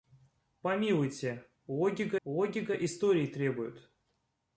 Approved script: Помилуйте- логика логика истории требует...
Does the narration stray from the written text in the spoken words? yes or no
no